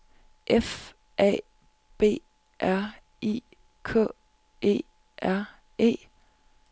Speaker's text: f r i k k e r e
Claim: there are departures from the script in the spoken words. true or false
true